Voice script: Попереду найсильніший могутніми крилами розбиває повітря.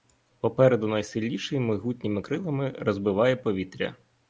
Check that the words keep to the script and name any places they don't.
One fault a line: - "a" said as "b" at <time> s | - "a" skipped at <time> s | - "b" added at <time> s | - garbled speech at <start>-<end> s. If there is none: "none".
none